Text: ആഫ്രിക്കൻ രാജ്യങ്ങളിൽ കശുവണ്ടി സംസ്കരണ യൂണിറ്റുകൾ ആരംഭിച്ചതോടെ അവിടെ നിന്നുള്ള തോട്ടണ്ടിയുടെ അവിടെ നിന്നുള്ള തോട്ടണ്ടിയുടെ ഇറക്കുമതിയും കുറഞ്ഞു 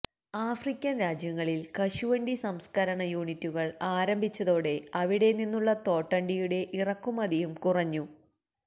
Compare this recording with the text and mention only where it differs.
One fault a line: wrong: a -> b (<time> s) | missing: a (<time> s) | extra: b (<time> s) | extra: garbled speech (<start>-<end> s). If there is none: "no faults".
missing: അവിടെ നിന്നുള്ള തോട്ടണ്ടിയുടെ (6.6 s)